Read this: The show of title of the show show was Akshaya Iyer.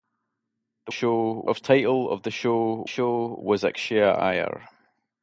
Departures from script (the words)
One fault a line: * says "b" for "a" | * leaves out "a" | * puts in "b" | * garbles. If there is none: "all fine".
all fine